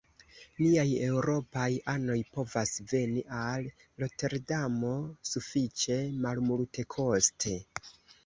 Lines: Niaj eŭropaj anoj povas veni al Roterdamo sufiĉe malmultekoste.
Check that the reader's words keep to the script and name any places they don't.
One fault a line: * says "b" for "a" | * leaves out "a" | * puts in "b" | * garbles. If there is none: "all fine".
all fine